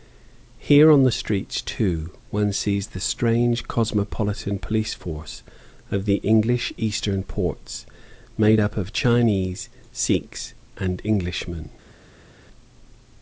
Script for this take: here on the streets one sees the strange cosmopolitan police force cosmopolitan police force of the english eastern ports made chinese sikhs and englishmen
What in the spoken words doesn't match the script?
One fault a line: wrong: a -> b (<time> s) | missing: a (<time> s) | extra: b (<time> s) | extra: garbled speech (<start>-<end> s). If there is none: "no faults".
extra: too (1.6 s)
missing: cosmopolitan police force (5.4 s)
extra: up of (8.6 s)